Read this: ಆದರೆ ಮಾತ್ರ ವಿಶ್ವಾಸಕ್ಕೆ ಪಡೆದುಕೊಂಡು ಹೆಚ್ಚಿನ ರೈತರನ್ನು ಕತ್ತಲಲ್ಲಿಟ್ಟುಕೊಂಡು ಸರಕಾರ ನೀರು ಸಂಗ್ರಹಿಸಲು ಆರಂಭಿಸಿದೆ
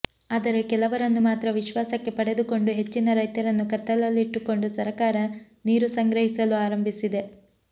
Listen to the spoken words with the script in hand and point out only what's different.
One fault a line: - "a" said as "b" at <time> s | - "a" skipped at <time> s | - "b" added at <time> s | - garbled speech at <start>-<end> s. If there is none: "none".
- "ಕೆಲವರನ್ನು" added at 0.7 s